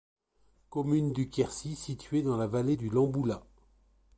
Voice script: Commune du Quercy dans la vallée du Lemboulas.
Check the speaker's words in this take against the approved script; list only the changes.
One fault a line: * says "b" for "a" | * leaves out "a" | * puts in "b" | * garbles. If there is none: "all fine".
* puts in "située"